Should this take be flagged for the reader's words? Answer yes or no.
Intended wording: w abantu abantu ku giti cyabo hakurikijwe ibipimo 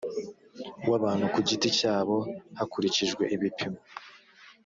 yes